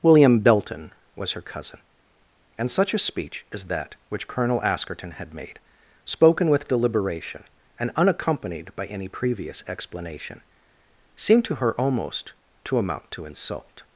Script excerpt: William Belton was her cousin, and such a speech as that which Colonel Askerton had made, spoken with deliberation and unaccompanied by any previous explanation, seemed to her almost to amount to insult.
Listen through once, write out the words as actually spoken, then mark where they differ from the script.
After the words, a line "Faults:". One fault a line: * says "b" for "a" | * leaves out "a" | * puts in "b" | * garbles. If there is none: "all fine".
William Belton was her cousin, and such a speech as that which Colonel Askerton had made, spoken with deliberation and unaccompanied by any previous explanation, seemed to her almost to amount to insult.
Faults:
all fine